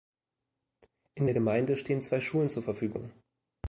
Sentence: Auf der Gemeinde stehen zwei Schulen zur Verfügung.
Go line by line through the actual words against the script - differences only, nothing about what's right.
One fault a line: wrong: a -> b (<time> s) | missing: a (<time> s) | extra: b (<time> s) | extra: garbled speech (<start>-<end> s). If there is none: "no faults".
wrong: Auf -> In (1.1 s)